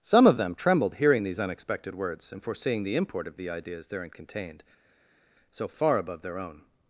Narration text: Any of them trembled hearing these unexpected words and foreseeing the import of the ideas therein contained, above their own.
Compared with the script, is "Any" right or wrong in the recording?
wrong